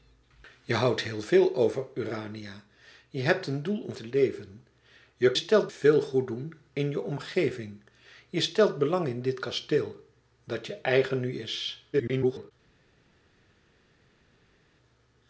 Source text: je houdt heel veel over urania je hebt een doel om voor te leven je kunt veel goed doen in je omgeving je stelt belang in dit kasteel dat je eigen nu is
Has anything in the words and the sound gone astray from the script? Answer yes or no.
yes